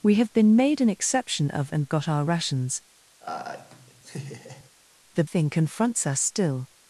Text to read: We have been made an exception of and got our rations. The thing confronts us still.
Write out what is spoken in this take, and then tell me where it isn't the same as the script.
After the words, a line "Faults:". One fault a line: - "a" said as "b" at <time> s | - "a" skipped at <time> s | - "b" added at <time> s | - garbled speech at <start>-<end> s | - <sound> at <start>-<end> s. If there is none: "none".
We have been made an exception of and got our rations. The thing confronts us still.
Faults:
- laugh at 3.2-4.7 s